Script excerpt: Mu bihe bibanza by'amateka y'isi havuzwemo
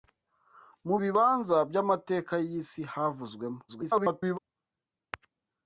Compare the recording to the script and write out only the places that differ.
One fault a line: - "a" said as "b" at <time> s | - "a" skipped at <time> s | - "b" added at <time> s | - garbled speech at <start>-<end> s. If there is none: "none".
- "bihe" skipped at 0.9 s
- garbled speech at 3.7-4.4 s